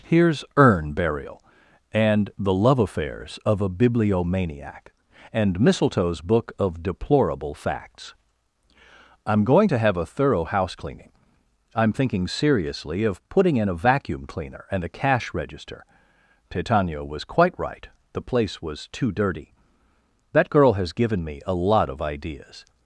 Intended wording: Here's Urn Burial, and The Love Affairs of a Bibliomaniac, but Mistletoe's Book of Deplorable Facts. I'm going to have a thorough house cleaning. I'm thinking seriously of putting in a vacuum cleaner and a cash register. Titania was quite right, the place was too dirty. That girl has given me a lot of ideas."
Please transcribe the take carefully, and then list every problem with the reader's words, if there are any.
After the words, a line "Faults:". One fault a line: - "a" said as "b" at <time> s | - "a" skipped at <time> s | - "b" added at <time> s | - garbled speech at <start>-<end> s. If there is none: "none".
Here's Urn Burial, and The Love Affairs of a Bibliomaniac, and Mistletoe's Book of Deplorable Facts. I'm going to have a thorough house cleaning. I'm thinking seriously of putting in a vacuum cleaner and a cash register. Titania was quite right, the place was too dirty. That girl has given me a lot of ideas."
Faults:
- "but" said as "and" at 5.3 s